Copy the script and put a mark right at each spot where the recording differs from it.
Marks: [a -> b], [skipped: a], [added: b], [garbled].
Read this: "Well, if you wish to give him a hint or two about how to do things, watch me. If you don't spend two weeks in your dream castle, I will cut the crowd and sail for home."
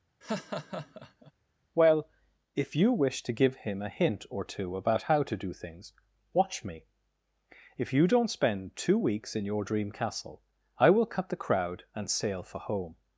"Well, if you wish to give him a hint or two about how to do things, watch me. If you don't spend two weeks in your dream castle, I will cut the crowd and sail for home."